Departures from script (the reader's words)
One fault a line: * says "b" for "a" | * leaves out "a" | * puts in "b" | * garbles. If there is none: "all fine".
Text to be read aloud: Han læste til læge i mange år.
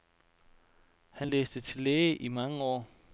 all fine